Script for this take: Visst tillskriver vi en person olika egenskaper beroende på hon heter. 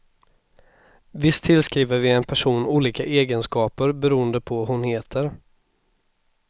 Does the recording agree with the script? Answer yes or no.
yes